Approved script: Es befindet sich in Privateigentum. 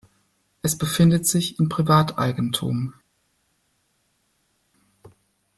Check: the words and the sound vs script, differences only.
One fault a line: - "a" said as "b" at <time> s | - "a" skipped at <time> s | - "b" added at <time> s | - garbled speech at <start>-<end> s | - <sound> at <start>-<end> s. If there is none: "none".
none